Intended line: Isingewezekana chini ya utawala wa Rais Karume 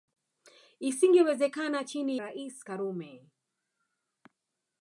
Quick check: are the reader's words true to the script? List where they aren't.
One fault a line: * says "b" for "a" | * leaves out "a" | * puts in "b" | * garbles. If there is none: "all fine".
* leaves out "ya utawala wa"